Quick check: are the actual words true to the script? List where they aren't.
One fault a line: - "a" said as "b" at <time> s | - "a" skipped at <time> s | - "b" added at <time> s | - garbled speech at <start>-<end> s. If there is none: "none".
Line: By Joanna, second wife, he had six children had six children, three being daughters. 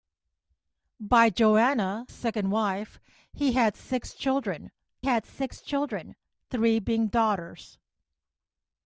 none